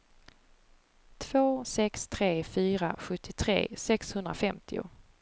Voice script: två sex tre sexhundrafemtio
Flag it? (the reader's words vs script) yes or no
yes